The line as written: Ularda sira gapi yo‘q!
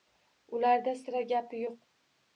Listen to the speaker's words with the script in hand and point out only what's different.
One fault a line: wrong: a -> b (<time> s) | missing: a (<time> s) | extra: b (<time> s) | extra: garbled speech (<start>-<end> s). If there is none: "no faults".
no faults